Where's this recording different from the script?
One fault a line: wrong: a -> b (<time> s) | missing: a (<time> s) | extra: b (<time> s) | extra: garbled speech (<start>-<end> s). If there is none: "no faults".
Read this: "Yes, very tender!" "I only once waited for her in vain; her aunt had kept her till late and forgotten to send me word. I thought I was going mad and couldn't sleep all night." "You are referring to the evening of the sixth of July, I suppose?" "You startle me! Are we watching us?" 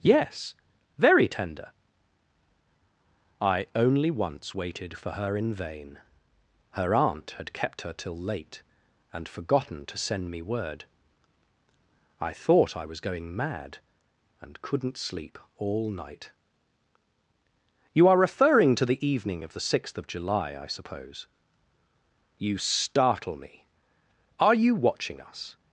wrong: we -> you (24.5 s)